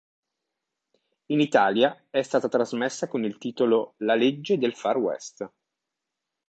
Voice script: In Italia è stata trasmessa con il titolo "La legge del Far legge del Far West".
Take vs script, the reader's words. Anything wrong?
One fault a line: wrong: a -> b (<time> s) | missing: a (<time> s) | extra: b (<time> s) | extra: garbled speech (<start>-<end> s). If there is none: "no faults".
missing: legge del Far (5.0 s)